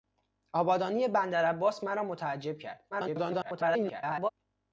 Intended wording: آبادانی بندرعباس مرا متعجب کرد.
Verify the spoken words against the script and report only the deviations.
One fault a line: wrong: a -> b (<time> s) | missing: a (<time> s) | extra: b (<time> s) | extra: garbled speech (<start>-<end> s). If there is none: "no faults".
extra: garbled speech (2.9-4.3 s)